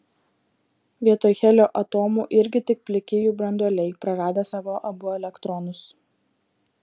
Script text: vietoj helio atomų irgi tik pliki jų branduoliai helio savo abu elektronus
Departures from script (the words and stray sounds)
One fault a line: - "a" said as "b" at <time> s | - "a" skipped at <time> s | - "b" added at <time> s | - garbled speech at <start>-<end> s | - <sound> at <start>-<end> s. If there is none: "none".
- "helio" said as "praradę" at 4.1 s